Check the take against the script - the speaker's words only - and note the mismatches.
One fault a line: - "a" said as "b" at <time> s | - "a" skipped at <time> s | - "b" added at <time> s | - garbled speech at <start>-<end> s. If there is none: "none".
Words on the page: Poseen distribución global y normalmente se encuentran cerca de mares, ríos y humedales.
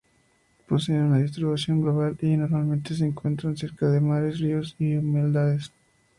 - "una" added at 1.0 s